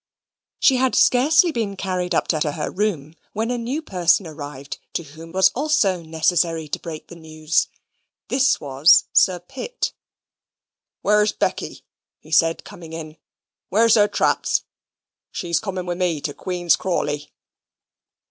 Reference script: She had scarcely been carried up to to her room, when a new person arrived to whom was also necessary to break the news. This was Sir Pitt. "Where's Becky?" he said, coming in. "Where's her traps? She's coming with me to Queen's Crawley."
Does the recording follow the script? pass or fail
pass